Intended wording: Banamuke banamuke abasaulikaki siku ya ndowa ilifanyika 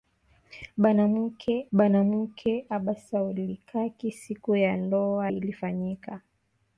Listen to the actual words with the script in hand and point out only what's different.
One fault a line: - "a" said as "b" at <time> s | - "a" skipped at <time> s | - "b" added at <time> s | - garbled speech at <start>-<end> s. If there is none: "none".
none